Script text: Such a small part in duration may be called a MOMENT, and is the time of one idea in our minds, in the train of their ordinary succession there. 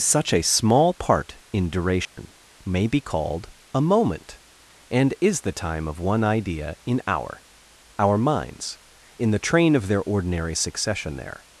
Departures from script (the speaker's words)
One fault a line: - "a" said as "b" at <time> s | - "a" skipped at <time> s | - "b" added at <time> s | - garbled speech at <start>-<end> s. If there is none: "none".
- "our" added at 8.0 s